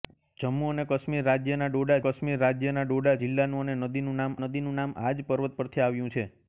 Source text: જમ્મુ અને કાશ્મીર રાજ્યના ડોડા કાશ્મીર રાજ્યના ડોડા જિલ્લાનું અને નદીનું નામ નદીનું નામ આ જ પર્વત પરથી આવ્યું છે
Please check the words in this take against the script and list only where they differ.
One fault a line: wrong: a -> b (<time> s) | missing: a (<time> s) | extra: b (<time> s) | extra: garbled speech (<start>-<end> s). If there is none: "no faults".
no faults